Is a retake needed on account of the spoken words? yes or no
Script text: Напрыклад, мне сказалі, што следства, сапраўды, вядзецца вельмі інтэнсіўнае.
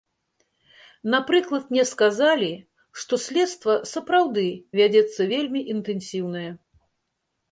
no